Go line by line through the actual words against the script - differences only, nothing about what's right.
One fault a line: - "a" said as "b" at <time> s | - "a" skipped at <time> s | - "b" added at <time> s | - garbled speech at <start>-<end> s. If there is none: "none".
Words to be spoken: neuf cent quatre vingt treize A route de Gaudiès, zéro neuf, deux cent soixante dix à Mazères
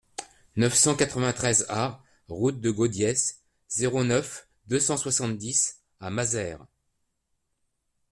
none